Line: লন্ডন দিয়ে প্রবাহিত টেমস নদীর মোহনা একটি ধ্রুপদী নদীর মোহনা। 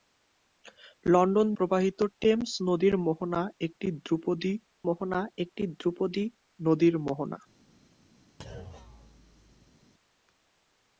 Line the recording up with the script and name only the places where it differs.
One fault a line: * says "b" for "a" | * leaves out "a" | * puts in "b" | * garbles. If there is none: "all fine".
* leaves out "দিয়ে"
* puts in "মোহনা একটি ধ্রুপদী"